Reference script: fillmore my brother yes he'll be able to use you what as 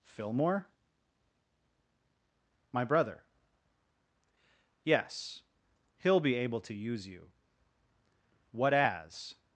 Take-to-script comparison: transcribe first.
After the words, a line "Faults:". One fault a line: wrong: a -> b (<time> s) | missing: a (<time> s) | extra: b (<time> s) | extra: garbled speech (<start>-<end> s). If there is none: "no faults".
fillmore my brother yes he'll be able to use you what as
Faults:
no faults